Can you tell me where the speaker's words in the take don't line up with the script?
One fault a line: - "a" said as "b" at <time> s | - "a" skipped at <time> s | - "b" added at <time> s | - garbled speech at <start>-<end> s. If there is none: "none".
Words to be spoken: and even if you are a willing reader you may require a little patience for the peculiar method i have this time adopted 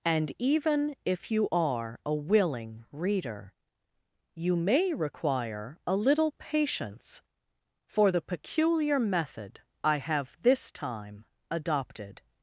none